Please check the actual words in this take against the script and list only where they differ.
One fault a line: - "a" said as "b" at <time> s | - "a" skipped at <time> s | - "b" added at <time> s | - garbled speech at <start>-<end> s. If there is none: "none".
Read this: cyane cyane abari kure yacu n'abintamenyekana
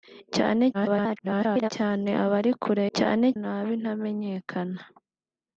- garbled speech at 0.7-1.7 s
- "yacu" said as "cyane" at 3.0 s